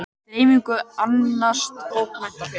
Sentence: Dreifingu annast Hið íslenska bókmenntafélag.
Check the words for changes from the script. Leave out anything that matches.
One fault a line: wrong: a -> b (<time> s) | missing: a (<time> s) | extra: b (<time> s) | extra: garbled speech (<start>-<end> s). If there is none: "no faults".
missing: Hið íslenska (1.7 s)